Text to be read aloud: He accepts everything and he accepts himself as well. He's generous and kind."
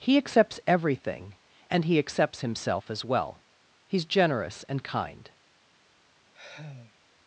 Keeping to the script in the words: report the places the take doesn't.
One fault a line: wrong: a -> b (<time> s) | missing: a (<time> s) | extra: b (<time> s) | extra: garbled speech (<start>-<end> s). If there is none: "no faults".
no faults